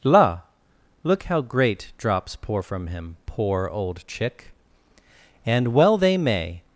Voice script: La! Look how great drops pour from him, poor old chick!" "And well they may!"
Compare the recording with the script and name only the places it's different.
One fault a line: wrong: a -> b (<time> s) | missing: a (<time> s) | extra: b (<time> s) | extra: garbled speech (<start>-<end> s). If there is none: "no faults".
no faults